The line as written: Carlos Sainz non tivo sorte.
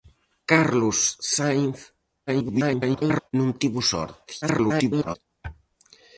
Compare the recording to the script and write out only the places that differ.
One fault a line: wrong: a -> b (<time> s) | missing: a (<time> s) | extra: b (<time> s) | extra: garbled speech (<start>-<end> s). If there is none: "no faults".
extra: garbled speech (2.3-3.3 s)
extra: garbled speech (4.4-5.2 s)